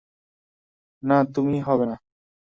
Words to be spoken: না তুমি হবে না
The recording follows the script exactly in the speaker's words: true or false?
true